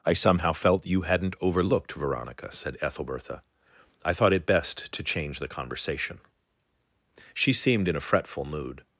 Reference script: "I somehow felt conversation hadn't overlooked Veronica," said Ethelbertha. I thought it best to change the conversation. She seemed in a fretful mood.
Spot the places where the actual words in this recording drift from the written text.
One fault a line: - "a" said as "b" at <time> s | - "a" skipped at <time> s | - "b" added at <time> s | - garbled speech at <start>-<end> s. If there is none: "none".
- "conversation" said as "you" at 0.9 s